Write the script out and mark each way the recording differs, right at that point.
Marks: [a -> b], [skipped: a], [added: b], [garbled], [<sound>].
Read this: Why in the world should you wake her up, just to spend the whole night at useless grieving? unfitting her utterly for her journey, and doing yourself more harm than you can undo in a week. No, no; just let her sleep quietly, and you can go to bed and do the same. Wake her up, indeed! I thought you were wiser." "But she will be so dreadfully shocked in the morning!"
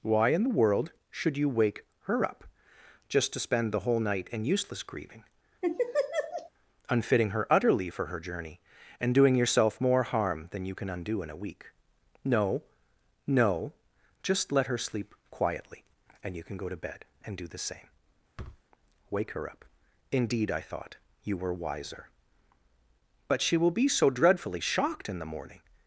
Why in the world should you wake her up, just to spend the whole night [at -> in] useless grieving? [laugh] unfitting her utterly for her journey, and doing yourself more harm than you can undo in a week. No, no; just let her sleep quietly, and you can go to bed and do the same. [thud] Wake her up, indeed! I thought you were wiser." "But she will be so dreadfully shocked in the morning!"